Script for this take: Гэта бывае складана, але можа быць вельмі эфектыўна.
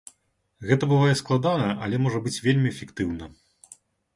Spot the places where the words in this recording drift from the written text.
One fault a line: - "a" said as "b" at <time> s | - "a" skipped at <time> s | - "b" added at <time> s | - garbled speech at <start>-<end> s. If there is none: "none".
none